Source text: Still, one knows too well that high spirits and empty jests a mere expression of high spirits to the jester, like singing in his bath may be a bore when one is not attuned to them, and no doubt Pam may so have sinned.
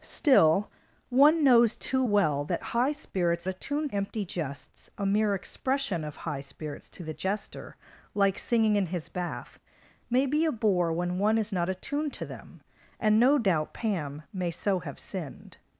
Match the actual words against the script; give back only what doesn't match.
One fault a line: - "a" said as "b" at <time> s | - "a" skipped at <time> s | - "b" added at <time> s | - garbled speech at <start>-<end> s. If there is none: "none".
- "and" said as "attuned" at 3.5 s